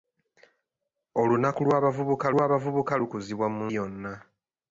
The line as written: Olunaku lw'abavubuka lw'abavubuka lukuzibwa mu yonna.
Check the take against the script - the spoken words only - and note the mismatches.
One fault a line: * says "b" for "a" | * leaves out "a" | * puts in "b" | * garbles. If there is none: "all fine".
all fine